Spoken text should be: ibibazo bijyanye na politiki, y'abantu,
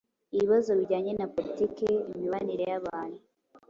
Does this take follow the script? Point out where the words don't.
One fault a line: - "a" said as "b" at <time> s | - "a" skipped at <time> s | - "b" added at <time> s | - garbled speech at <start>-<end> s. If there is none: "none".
- "imibanire" added at 2.1 s